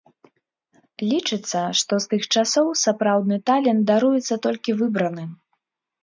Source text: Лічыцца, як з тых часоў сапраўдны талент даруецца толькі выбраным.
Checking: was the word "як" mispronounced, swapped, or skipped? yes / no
yes